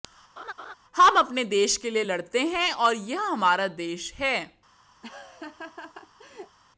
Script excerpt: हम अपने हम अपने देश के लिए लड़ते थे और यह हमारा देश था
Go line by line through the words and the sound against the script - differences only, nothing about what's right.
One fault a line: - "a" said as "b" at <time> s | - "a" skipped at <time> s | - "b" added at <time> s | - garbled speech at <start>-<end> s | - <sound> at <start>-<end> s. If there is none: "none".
- laugh at 0.4-0.7 s
- "हम अपने" skipped at 1.4 s
- "थे" said as "हैं" at 2.5 s
- "था" said as "है" at 4.1 s
- laugh at 5.0-6.6 s